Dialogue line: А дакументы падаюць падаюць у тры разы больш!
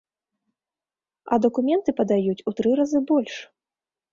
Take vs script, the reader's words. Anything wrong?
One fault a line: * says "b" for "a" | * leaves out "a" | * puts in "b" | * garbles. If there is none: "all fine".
* leaves out "падаюць"